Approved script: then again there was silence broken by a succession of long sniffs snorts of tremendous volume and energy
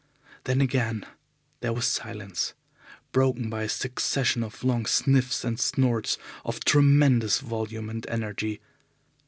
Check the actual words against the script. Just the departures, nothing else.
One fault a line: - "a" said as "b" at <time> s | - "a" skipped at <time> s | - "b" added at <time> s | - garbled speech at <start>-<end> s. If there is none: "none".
- "and" added at 5.4 s